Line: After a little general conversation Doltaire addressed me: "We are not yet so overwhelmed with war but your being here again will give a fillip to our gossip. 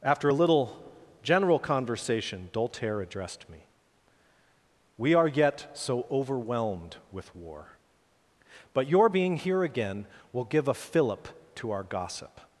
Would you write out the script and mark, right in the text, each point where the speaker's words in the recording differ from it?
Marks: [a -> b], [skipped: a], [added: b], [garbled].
After a little general conversation Doltaire addressed me: "We are [skipped: not] yet so overwhelmed with war but your being here again will give a fillip to our gossip.